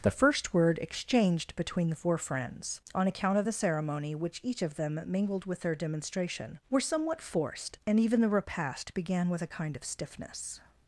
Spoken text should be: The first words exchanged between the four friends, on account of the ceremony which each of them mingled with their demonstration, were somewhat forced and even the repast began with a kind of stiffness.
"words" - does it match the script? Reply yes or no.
no